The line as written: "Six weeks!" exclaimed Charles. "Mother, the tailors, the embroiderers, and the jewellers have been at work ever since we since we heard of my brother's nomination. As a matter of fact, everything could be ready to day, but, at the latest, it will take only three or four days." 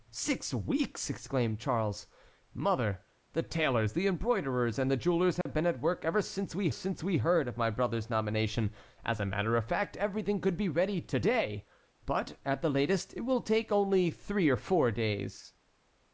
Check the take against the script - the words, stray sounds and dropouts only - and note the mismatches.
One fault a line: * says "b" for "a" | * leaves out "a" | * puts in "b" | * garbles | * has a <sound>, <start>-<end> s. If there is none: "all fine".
* has a dropout, 5.4-5.5 s